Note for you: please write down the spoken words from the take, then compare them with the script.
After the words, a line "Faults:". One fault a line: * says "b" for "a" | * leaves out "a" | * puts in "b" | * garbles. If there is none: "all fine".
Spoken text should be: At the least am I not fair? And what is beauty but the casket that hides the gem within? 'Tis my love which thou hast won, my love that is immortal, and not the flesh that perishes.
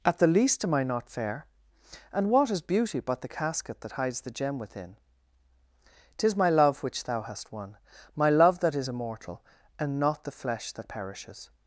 At the least am I not fair? And what is beauty but the casket that hides the gem within? 'Tis my love which thou hast won, my love that is immortal, and not the flesh that perishes.
Faults:
all fine